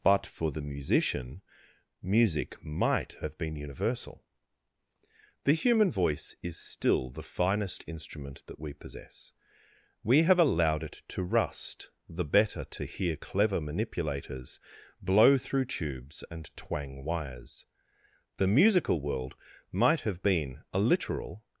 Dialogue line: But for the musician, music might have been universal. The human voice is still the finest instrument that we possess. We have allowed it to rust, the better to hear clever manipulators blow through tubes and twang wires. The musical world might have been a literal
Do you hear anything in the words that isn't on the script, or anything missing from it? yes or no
no